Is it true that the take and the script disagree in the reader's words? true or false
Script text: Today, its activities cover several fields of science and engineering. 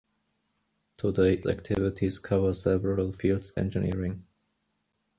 true